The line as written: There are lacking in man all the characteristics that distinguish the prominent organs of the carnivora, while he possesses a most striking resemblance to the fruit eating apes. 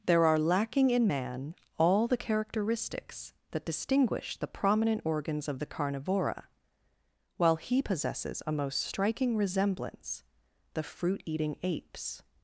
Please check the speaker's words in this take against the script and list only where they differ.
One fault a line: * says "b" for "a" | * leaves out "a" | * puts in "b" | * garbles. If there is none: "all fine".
* leaves out "to"